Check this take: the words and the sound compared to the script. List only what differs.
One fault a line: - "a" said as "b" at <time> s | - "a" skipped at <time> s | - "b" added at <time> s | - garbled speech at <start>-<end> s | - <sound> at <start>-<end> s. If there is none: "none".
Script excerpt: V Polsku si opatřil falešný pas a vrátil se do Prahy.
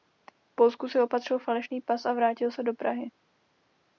none